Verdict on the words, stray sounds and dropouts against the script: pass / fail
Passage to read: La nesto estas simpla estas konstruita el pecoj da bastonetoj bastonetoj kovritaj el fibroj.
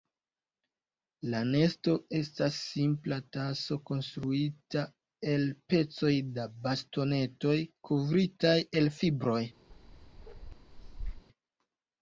fail